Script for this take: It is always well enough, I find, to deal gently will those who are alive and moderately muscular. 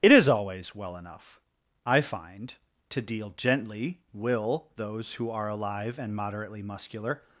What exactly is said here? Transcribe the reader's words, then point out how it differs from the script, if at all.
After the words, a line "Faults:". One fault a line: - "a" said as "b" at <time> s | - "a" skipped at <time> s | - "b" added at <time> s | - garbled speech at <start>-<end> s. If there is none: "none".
It is always well enough, I find, to deal gently will those who are alive and moderately muscular.
Faults:
none